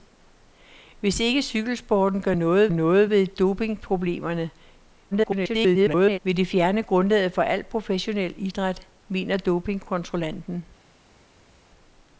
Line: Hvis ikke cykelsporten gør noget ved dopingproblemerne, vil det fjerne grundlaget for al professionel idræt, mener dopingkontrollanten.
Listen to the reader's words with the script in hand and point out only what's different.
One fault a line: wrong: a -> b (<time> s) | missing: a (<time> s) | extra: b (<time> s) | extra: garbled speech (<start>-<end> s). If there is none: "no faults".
extra: noget (2.7 s)
extra: garbled speech (5.1-6.2 s)